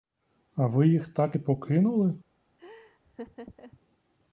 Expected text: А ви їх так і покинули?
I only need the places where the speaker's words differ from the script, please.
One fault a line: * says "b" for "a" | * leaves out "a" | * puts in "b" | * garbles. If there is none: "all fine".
all fine